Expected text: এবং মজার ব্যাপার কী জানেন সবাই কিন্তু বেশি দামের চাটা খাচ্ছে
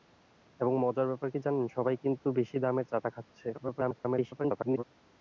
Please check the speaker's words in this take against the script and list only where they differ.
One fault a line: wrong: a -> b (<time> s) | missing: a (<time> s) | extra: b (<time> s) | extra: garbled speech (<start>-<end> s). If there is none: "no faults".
extra: garbled speech (3.5-4.8 s)